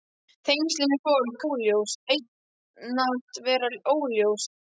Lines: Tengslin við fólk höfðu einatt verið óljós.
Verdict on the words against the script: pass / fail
fail